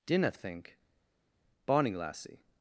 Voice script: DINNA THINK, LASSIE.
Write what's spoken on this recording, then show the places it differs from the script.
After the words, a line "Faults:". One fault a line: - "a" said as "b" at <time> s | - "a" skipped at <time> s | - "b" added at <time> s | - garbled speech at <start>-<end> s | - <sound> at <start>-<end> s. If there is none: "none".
DINNA THINK, BONNIE LASSIE.
Faults:
- "BONNIE" added at 1.7 s